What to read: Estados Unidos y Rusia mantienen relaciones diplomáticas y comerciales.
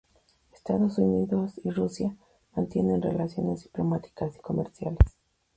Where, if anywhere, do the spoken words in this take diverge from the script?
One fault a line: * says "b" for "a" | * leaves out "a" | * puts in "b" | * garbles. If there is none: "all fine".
all fine